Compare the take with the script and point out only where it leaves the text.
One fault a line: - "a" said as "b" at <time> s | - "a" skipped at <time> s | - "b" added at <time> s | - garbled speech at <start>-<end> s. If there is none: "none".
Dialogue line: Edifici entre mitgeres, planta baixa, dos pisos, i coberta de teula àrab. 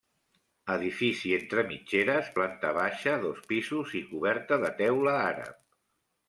none